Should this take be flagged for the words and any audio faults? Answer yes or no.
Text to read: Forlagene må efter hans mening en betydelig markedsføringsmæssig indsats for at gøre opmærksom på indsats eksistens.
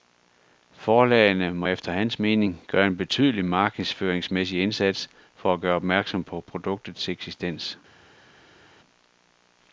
yes